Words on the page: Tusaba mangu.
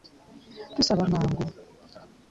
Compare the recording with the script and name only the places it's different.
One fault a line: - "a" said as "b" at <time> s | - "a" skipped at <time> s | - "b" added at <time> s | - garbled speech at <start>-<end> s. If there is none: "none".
none